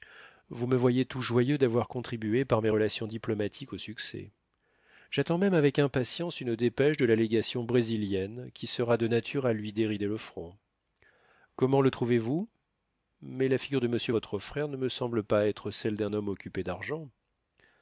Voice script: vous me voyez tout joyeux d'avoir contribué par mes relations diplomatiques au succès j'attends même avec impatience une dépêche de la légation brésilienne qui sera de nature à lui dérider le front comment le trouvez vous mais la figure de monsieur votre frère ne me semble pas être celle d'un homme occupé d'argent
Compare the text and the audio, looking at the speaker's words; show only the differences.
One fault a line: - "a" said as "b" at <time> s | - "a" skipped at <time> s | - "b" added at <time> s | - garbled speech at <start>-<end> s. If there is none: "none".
none